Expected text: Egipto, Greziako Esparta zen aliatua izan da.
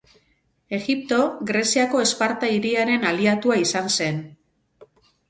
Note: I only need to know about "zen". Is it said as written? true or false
false